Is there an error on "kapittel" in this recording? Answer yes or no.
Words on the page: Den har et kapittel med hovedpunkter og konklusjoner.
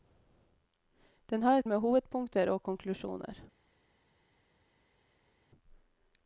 yes